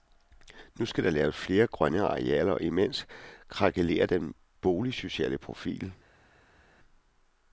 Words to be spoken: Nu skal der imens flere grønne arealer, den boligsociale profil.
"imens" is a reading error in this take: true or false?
true